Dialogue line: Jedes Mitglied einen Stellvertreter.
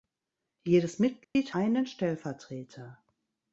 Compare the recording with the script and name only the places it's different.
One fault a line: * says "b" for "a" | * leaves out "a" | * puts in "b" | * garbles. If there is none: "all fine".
all fine